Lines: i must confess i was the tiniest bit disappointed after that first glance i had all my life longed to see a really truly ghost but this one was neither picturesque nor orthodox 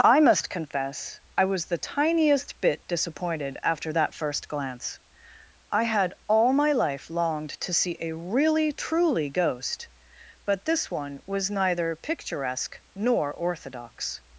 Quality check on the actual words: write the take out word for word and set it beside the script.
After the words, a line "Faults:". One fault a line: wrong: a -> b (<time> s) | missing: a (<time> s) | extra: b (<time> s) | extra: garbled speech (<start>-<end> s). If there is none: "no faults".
i must confess i was the tiniest bit disappointed after that first glance i had all my life longed to see a really truly ghost but this one was neither picturesque nor orthodox
Faults:
no faults